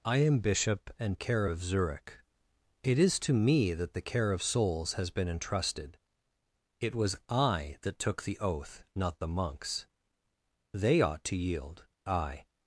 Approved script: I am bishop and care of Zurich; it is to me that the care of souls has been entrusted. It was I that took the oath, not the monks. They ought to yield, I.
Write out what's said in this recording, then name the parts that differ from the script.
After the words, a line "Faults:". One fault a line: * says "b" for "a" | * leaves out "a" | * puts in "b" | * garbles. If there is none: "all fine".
I am bishop and care of Zurich; it is to me that the care of souls has been entrusted. It was I that took the oath, not the monks. They ought to yield, I.
Faults:
all fine